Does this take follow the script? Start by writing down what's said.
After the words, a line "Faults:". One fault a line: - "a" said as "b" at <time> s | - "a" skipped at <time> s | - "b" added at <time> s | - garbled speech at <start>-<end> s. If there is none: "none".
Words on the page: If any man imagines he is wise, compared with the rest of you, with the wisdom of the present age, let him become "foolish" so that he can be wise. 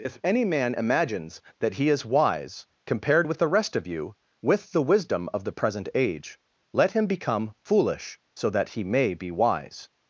If any man imagines that he is wise, compared with the rest of you, with the wisdom of the present age, let him become "foolish" so that he may be wise.
Faults:
- "that" added at 1.6 s
- "can" said as "may" at 8.8 s